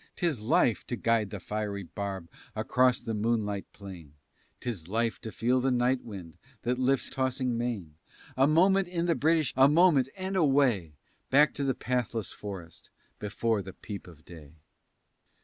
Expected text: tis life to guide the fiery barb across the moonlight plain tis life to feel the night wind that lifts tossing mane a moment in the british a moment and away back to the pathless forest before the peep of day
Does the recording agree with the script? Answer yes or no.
yes